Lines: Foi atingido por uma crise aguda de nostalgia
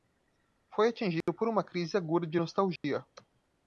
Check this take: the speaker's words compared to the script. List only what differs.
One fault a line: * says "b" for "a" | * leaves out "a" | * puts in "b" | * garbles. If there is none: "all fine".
all fine